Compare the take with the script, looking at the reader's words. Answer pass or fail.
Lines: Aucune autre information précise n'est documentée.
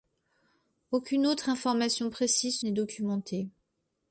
pass